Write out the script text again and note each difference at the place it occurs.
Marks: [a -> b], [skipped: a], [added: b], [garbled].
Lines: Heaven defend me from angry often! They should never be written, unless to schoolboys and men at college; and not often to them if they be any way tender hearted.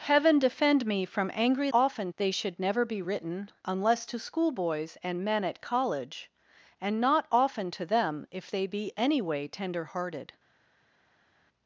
Heaven defend me from angry often! They should never be written, unless to schoolboys and men at college; and not often to them if they be any way tender hearted.